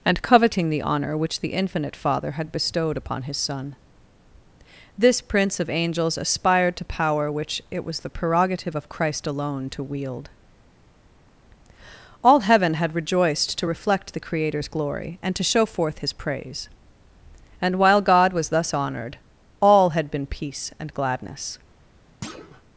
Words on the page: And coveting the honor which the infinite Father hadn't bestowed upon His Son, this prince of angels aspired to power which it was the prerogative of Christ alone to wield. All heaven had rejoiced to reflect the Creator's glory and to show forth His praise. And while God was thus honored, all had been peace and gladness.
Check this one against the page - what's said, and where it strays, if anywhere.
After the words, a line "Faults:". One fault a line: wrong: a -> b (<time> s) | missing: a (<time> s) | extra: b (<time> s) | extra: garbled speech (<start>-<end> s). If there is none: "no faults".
And coveting the honor which the infinite Father had bestowed upon His Son, this prince of angels aspired to power which it was the prerogative of Christ alone to wield. All heaven had rejoiced to reflect the Creator's glory and to show forth His praise. And while God was thus honored, all had been peace and gladness.
Faults:
wrong: hadn't -> had (2.3 s)